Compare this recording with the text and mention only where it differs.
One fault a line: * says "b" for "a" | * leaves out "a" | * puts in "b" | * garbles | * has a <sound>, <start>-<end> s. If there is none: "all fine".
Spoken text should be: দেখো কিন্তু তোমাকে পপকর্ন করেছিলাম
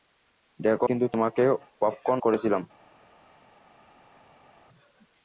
all fine